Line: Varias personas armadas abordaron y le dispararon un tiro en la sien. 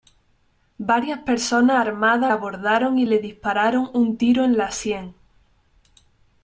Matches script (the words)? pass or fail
pass